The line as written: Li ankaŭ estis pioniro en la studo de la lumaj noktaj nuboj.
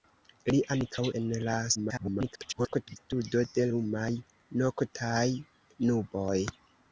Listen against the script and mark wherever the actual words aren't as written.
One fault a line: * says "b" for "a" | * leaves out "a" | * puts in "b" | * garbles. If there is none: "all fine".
* leaves out "estis pioniro"
* garbles
* leaves out "la"